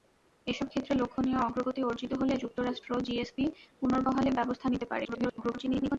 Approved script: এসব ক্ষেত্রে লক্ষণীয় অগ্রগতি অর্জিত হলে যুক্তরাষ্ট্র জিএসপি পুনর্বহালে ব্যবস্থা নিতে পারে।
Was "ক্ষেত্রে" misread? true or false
false